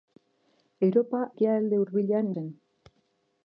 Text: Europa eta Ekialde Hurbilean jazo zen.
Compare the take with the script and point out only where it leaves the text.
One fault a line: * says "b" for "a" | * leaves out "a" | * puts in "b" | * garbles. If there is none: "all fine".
* leaves out "eta"
* leaves out "jazo"